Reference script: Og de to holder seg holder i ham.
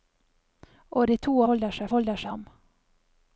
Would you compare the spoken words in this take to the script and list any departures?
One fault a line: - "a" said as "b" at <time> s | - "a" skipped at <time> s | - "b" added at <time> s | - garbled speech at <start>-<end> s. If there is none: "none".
none